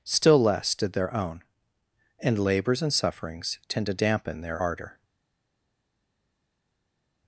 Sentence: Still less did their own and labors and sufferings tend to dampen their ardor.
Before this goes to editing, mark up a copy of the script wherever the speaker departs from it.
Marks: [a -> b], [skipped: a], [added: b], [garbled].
Still less did their own and labors and sufferings tend to dampen their ardor.